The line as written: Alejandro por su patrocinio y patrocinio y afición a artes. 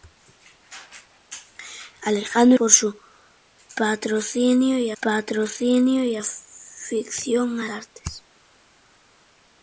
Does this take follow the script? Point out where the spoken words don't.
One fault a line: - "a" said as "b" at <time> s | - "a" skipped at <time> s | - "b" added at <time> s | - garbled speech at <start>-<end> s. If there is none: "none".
none